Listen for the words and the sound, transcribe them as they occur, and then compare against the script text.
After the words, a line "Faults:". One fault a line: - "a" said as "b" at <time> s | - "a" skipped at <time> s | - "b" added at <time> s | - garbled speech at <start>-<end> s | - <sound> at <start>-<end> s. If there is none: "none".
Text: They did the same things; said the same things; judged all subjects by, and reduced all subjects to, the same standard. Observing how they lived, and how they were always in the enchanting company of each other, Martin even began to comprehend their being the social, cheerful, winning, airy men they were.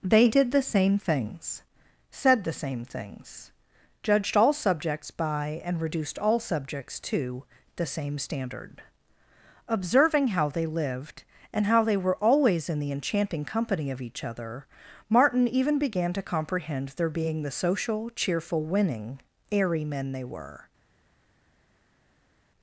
They did the same things; said the same things; judged all subjects by, and reduced all subjects to, the same standard. Observing how they lived, and how they were always in the enchanting company of each other, Martin even began to comprehend their being the social, cheerful, winning, airy men they were.
Faults:
none